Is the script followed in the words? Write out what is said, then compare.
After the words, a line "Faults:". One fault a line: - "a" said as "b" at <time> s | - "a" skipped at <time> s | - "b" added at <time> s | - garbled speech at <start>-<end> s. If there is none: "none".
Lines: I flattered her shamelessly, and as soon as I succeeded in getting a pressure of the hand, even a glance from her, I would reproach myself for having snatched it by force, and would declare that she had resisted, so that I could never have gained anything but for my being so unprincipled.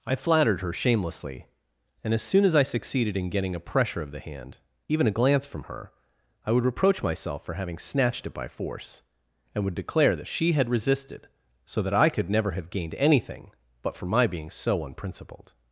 I flattered her shamelessly, and as soon as I succeeded in getting a pressure of the hand, even a glance from her, I would reproach myself for having snatched it by force, and would declare that she had resisted, so that I could never have gained anything but for my being so unprincipled.
Faults:
none